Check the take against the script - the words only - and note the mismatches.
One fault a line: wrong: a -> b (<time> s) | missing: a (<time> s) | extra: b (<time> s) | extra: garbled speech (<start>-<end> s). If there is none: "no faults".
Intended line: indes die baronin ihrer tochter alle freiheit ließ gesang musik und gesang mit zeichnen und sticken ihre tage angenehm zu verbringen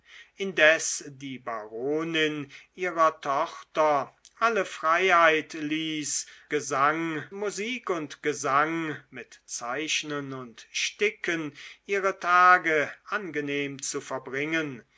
no faults